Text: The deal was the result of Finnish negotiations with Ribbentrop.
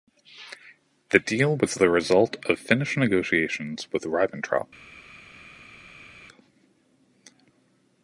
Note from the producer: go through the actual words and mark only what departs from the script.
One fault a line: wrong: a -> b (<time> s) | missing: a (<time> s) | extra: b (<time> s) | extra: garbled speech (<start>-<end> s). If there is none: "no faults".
no faults